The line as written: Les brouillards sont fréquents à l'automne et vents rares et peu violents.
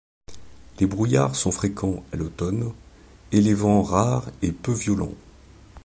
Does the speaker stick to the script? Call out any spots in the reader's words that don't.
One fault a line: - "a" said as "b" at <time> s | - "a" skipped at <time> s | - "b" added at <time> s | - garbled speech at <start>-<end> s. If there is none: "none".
- "les" added at 3.4 s